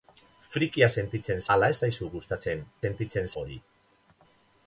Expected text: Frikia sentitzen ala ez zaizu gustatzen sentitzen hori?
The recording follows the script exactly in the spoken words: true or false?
true